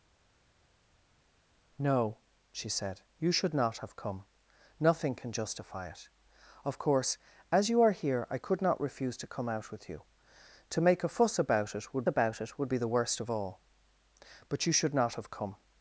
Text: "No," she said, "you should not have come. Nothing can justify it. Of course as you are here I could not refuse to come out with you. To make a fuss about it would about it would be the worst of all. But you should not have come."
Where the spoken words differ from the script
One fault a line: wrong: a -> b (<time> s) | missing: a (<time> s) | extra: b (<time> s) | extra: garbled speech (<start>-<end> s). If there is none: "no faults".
no faults